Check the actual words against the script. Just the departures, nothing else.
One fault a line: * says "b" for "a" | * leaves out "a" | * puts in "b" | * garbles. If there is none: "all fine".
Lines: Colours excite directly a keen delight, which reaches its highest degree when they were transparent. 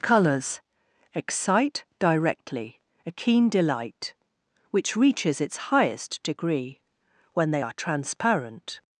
* says "are" for "were"